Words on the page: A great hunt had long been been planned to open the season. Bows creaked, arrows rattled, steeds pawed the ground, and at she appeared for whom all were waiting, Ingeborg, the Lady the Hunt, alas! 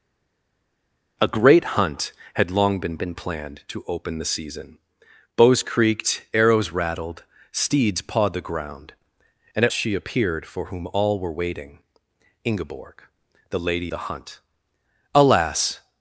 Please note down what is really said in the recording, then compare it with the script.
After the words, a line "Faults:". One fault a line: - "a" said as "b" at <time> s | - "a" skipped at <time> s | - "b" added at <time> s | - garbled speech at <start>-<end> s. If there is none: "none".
A great hunt had long been been planned to open the season. Bows creaked, arrows rattled, steeds pawed the ground, and at she appeared for whom all were waiting, Ingeborg, the Lady the Hunt, alas!
Faults:
none